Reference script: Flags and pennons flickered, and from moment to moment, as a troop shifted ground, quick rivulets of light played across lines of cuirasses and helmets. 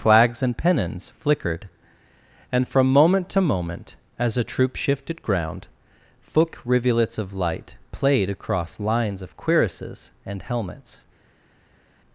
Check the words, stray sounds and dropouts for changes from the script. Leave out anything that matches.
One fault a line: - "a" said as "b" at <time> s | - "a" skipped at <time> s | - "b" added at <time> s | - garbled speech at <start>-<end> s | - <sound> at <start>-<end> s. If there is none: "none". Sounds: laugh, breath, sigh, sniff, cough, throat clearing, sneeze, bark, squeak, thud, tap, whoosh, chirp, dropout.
- "quick" said as "thick" at 6.3 s